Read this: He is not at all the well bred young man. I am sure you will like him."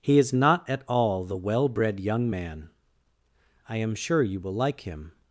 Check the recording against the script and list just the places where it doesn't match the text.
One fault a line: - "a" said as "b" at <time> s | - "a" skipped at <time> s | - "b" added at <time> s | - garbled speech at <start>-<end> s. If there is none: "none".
none